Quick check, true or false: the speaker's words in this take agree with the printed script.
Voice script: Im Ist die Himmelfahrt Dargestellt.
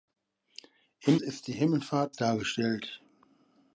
true